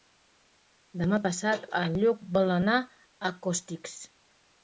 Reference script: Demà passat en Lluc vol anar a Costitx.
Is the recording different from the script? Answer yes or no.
no